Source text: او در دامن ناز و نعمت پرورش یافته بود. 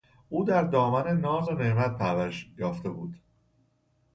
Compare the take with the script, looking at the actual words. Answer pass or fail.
pass